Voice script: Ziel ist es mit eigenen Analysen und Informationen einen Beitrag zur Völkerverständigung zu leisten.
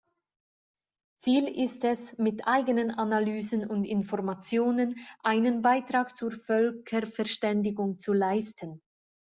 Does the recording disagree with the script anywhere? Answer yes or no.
no